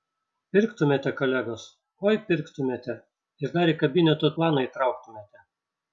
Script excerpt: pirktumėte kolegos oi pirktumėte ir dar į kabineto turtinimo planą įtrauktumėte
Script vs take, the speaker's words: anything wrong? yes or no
yes